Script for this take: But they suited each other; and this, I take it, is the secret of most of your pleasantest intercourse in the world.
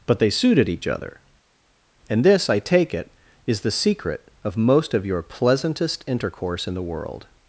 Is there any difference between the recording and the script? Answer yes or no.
no